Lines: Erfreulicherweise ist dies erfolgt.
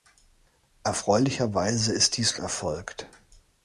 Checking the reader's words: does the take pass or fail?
pass